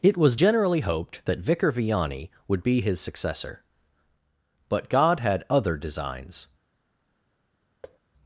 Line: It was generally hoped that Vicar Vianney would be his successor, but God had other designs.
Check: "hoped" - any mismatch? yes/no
no